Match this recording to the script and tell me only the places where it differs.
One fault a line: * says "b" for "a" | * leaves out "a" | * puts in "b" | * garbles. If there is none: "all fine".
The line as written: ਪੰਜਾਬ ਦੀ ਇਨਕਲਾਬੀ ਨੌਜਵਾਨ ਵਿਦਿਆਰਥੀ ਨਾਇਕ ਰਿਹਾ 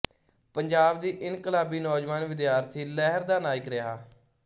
* puts in "ਲਹਿਰ ਦਾ"